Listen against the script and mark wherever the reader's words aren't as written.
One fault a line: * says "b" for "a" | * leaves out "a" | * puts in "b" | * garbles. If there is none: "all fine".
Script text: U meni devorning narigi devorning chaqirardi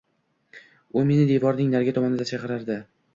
* says "tomonida" for "devorning"